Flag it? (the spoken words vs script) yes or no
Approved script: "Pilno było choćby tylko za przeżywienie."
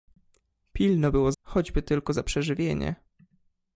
no